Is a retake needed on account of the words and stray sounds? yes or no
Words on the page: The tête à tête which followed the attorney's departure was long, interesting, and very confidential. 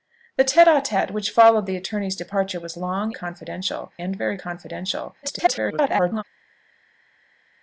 yes